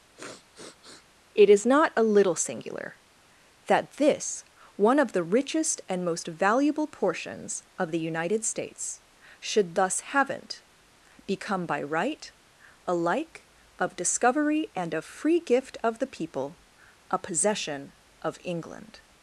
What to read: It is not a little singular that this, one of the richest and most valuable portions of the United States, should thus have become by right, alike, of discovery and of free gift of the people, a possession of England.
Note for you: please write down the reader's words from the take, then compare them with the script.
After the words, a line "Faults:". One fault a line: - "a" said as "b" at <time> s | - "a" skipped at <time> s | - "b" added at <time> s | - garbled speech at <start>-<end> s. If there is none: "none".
It is not a little singular that this, one of the richest and most valuable portions of the United States, should thus haven't become by right, alike, of discovery and of free gift of the people, a possession of England.
Faults:
- "have" said as "haven't" at 10.0 s